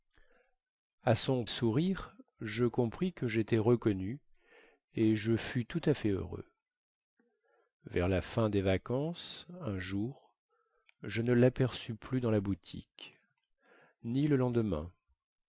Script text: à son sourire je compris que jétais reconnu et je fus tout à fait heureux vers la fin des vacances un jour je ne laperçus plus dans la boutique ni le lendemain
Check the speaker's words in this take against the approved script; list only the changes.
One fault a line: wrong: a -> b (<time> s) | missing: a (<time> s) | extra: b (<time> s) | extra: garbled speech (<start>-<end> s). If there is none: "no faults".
no faults